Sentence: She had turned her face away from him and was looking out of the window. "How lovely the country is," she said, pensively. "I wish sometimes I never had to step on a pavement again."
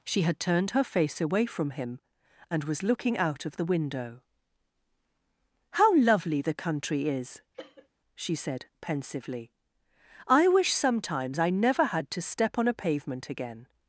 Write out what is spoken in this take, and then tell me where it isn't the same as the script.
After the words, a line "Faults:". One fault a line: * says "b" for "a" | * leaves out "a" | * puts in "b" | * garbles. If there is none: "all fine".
She had turned her face away from him and was looking out of the window. "How lovely the country is," she said, pensively. "I wish sometimes I never had to step on a pavement again."
Faults:
all fine